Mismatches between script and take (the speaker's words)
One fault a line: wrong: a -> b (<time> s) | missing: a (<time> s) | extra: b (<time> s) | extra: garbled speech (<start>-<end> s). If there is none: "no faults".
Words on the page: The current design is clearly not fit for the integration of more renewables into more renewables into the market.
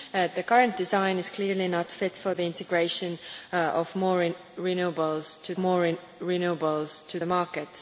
no faults